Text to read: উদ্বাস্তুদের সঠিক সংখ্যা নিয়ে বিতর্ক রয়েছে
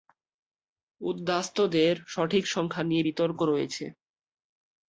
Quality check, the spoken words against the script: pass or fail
pass